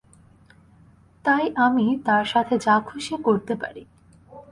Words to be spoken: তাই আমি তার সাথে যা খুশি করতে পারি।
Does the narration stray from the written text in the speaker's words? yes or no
no